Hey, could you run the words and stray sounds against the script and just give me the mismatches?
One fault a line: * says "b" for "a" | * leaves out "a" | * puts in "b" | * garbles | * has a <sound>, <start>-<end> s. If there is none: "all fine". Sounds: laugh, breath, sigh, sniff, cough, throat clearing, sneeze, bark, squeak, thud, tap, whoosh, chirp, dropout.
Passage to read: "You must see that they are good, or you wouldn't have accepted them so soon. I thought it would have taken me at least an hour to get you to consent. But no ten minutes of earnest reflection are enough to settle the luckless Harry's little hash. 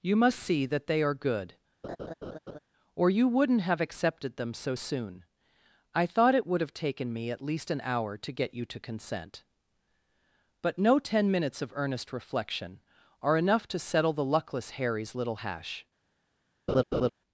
* has a laugh, 1.8-2.6 s
* has a laugh, 16.7-17.1 s